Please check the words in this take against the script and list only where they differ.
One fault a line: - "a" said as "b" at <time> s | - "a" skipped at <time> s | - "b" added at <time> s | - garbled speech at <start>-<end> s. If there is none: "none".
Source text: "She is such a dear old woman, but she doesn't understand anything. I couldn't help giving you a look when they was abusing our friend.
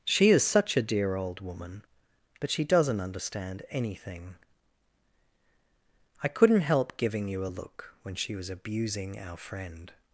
- "they" said as "she" at 8.2 s